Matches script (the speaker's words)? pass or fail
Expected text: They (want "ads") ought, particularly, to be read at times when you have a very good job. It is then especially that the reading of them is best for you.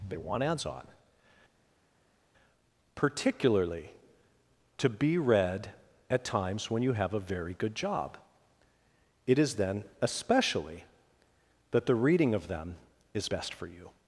fail